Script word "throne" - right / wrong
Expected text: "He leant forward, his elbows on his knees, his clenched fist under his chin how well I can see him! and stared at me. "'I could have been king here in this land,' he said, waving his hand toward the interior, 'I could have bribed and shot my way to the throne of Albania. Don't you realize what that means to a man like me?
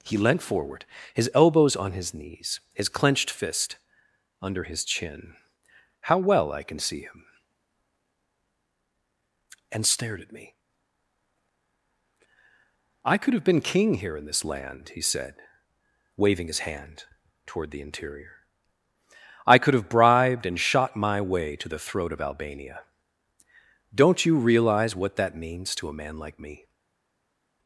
wrong